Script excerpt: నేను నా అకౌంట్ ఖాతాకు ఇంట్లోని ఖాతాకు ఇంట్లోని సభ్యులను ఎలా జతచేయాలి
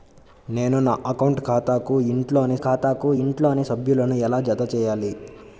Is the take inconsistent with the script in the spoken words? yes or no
no